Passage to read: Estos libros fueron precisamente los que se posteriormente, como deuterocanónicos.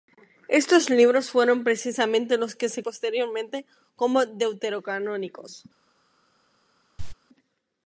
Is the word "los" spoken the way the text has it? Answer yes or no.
yes